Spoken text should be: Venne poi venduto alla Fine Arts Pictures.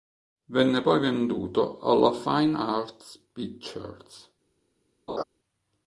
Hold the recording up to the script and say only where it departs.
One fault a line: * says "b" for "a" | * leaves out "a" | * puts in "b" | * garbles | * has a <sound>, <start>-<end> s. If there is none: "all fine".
* has a laugh, 5.1-5.2 s